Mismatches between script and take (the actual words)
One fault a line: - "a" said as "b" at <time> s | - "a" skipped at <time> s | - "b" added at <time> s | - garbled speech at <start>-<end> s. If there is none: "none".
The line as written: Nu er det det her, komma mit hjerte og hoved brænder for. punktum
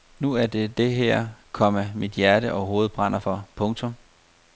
none